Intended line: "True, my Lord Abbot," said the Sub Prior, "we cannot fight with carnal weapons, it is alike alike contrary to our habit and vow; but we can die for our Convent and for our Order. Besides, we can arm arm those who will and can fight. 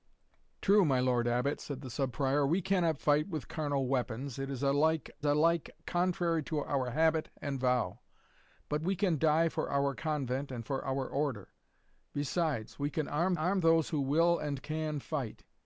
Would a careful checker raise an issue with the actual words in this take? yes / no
no